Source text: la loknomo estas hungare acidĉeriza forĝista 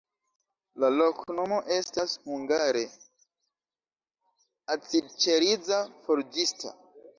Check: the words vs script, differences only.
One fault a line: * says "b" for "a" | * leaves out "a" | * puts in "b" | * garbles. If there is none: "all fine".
all fine